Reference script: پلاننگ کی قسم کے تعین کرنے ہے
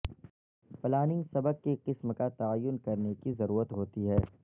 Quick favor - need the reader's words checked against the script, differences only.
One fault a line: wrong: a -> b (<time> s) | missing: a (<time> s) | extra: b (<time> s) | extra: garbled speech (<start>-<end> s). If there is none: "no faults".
extra: سبق (1.3 s)
wrong: کے -> کا (2.1 s)
extra: کی ضرورت ہوتی (3.2 s)